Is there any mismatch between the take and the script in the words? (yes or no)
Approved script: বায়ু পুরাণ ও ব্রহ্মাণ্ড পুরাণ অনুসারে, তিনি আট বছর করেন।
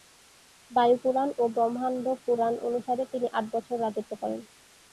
yes